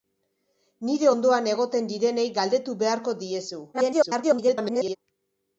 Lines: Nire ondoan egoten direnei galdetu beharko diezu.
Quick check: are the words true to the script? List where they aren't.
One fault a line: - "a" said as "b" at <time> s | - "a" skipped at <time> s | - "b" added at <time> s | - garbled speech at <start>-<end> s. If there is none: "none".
- garbled speech at 3.7-5.0 s